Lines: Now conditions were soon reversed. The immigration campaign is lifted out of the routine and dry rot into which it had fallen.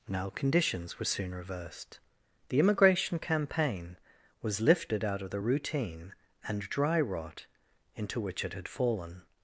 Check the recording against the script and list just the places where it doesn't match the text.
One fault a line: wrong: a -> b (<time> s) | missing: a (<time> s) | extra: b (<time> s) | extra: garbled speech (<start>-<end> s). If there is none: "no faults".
wrong: is -> was (4.4 s)